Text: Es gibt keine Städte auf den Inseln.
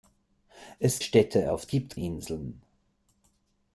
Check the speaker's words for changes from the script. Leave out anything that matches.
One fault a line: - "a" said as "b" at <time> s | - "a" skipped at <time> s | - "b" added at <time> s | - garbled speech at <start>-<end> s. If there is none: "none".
- "gibt keine" skipped at 1.0 s
- "den" said as "gibt" at 1.7 s